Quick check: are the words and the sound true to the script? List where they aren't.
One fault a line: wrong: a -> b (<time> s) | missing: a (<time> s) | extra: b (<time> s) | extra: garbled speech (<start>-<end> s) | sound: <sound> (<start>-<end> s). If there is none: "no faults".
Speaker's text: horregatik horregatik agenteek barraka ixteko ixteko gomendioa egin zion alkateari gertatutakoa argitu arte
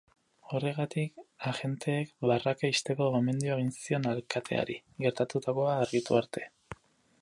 missing: horregatik (1.2 s)
missing: ixteko (3.1 s)